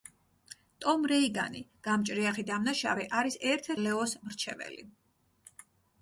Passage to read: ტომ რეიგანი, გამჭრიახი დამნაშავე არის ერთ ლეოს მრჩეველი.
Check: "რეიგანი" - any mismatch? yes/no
no